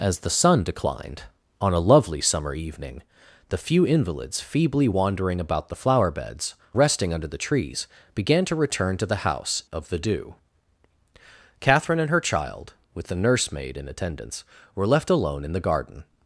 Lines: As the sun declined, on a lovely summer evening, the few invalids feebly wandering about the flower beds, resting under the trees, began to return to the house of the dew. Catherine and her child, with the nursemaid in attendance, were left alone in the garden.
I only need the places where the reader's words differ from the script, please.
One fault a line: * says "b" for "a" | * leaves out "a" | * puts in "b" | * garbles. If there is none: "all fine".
all fine